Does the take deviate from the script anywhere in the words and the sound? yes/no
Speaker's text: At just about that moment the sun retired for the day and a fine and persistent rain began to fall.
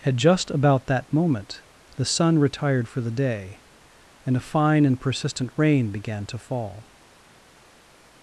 no